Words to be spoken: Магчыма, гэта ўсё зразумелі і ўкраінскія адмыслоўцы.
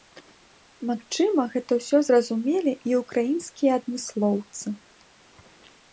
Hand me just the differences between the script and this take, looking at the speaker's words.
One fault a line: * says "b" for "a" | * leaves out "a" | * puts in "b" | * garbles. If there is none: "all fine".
all fine